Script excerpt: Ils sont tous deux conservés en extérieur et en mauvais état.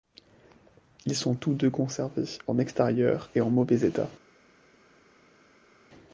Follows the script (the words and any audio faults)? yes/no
yes